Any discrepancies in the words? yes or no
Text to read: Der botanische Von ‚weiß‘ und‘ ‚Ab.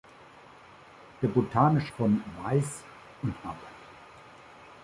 no